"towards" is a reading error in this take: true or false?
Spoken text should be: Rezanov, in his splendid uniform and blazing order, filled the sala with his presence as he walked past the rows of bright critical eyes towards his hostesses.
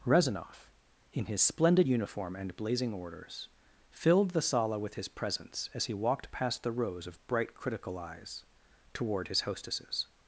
true